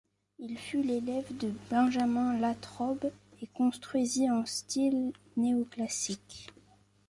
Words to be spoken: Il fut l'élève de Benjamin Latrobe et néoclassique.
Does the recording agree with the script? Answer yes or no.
no